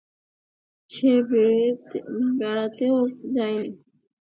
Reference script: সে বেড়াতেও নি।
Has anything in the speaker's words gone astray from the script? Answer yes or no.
yes